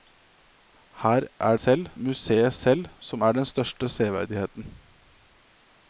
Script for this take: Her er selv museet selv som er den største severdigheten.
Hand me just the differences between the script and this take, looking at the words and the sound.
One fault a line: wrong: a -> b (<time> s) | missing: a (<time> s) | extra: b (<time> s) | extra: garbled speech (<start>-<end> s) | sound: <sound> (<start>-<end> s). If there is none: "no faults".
no faults